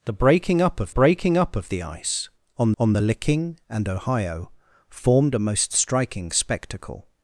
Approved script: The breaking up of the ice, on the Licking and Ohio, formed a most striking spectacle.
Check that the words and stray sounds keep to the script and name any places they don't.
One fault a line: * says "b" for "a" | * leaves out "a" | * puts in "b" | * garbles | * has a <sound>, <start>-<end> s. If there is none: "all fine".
* puts in "breaking up of"
* puts in "on"